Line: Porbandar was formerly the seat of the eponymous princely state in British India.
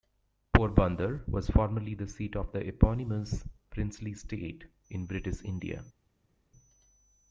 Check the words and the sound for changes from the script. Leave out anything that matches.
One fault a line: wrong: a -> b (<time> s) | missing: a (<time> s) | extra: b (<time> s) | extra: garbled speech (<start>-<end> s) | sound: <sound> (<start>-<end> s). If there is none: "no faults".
no faults